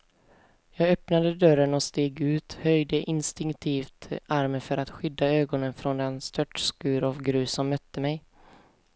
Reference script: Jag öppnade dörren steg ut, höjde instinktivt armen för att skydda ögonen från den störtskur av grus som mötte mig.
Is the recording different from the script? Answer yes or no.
yes